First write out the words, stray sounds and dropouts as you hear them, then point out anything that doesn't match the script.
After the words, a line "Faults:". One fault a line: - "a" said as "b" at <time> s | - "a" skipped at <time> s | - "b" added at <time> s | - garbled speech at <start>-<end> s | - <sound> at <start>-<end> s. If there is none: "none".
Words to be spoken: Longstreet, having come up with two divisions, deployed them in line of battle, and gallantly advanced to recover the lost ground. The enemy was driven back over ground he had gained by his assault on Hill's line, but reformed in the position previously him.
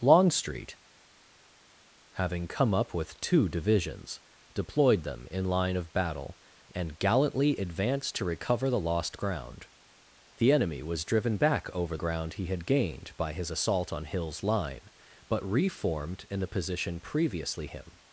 Longstreet, having come up with two divisions, deployed them in line of battle, and gallantly advanced to recover the lost ground. The enemy was driven back over ground he had gained by his assault on Hill's line, but reformed in the position previously him.
Faults:
none